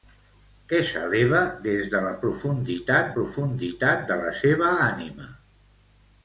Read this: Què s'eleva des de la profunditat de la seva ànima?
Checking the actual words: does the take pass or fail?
fail